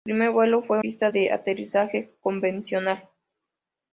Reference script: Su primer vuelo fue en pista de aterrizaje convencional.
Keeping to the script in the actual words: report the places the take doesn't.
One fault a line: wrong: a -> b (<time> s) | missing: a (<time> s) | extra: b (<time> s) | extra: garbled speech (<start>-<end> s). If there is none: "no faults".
no faults